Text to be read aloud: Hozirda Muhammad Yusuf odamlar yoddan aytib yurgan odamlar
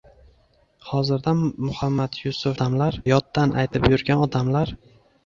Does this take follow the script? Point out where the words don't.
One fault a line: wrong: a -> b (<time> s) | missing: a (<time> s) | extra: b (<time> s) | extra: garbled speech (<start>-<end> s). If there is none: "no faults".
no faults